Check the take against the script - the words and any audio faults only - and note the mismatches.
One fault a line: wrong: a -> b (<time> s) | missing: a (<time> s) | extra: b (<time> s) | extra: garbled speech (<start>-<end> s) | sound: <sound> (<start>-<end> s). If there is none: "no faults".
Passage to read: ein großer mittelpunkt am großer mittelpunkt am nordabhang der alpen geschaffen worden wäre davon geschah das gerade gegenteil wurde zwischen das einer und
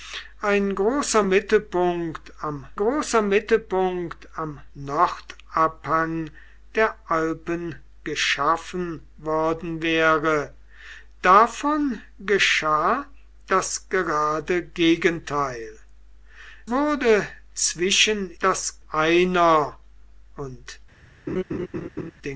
sound: laugh (21.3-22.1 s)